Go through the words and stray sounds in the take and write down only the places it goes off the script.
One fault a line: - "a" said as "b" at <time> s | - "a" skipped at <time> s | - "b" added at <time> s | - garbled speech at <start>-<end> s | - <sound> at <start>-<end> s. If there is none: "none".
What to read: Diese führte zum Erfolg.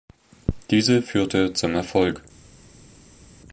none